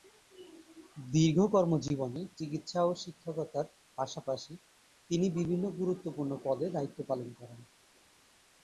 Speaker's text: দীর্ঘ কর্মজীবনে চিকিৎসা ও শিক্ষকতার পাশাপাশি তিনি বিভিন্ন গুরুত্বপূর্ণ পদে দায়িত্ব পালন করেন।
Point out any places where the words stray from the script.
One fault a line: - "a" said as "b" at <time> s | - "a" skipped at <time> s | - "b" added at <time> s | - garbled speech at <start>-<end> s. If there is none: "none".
none